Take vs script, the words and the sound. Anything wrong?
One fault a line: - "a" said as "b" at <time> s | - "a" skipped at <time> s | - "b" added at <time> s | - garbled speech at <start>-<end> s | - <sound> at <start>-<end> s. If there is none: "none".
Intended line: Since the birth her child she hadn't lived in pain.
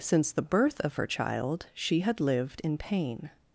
- "of" added at 0.8 s
- "hadn't" said as "had" at 2.0 s